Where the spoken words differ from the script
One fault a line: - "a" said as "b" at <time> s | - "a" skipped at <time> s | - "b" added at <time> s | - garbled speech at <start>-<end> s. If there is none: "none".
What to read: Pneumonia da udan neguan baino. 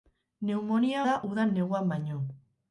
none